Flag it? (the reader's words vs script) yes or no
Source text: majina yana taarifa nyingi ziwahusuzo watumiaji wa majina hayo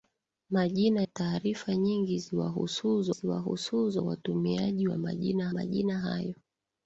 yes